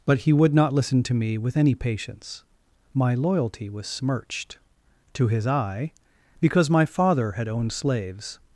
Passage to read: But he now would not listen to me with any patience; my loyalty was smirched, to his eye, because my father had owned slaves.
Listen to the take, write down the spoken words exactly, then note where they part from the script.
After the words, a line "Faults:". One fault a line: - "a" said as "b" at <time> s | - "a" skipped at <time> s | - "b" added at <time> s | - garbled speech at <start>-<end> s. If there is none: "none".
But he would not listen to me with any patience; my loyalty was smirched, to his eye, because my father had owned slaves.
Faults:
- "now" skipped at 0.3 s